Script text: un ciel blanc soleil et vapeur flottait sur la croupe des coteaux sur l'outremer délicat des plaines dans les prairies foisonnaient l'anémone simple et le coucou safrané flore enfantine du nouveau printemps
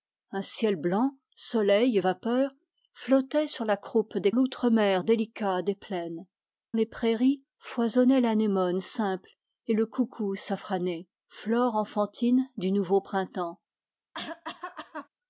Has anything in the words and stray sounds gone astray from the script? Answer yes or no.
yes